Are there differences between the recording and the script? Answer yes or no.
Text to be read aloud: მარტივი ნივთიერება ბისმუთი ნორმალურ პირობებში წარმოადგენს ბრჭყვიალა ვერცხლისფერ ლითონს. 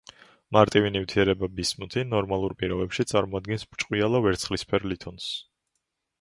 no